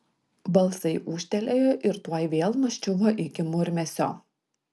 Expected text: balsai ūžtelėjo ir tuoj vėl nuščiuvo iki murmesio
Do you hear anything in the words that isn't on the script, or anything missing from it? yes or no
no